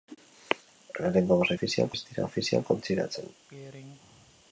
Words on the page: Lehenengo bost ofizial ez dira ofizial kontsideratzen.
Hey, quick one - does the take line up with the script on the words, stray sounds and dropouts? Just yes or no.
no